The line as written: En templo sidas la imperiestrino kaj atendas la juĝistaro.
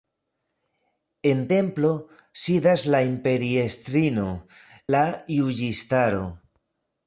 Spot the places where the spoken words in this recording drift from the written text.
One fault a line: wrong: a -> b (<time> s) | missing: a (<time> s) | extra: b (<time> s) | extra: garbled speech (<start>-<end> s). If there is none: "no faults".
missing: kaj atendas (4.3 s)